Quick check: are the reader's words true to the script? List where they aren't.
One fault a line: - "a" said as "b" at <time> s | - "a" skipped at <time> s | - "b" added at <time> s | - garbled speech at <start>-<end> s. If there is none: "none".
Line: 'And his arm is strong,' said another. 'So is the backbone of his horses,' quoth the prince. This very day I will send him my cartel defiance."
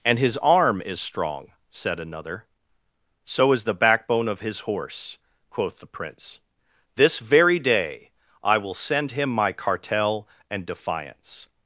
- "horses" said as "horse" at 4.6 s
- "and" added at 10.5 s